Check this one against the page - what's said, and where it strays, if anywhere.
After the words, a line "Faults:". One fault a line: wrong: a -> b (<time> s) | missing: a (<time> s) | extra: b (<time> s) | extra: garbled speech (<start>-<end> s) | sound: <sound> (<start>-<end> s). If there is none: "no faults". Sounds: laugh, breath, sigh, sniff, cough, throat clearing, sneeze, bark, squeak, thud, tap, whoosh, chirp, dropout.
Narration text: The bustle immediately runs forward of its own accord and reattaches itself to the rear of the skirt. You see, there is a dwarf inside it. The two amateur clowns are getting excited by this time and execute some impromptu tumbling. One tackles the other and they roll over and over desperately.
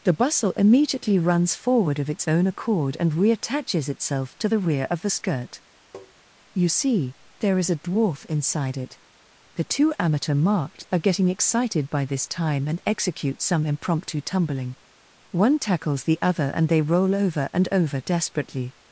The bustle immediately runs forward of its own accord and reattaches itself to the rear of the skirt. You see, there is a dwarf inside it. The two amateur marked are getting excited by this time and execute some impromptu tumbling. One tackles the other and they roll over and over desperately.
Faults:
sound: tap (5.9-6.1 s)
wrong: clowns -> marked (10.3 s)